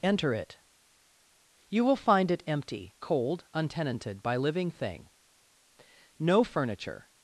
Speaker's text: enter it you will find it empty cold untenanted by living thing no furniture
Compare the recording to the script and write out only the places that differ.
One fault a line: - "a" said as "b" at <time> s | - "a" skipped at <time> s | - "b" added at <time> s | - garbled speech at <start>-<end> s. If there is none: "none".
none